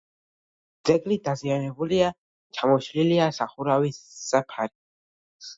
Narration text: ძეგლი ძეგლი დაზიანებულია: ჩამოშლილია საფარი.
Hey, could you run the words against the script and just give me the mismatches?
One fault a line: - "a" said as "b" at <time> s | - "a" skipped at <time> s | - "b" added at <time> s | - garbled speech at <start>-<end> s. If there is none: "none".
- "ძეგლი" skipped at 1.2 s
- "სახურავის" added at 3.4 s